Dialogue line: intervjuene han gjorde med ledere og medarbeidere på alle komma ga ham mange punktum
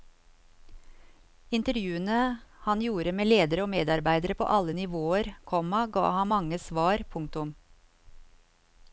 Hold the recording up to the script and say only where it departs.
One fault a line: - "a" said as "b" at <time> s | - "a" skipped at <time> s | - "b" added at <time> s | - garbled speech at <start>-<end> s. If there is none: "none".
- "nivåer" added at 4.8 s
- "svar" added at 6.6 s